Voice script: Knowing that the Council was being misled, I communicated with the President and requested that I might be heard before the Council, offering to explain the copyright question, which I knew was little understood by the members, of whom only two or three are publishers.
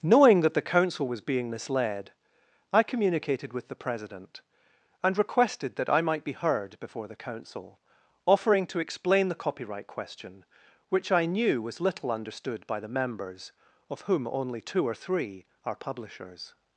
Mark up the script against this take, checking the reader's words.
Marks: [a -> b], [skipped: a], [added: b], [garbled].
Knowing that the Council was being misled, I communicated with the President and requested that I might be heard before the Council, offering to explain the copyright question, which I knew was little understood by the members, of whom only two or three are publishers.